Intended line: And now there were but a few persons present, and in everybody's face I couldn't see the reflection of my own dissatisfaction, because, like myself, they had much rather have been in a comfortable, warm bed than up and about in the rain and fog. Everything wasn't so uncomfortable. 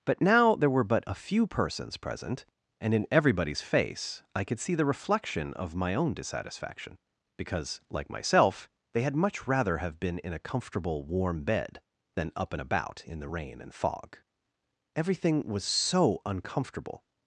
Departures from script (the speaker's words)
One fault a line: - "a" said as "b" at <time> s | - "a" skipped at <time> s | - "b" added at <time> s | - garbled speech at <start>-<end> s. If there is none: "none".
- "And" said as "But" at 0.1 s
- "couldn't" said as "could" at 4.4 s
- "wasn't" said as "was" at 15.5 s